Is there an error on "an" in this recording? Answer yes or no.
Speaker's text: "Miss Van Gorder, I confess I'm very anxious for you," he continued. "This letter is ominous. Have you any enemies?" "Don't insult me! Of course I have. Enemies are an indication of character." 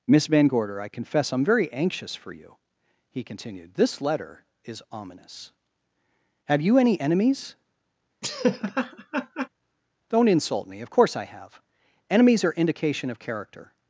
yes